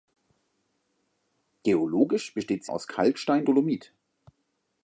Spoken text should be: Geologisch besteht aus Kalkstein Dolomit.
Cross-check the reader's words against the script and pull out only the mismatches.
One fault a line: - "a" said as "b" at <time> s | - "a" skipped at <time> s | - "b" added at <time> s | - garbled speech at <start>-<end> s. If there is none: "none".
none